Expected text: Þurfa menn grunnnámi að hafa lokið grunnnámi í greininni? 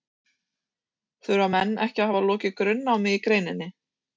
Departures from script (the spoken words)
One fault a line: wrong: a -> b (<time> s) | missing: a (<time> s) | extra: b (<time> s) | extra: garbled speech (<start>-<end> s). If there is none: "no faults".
wrong: grunnnámi -> ekki (1.9 s)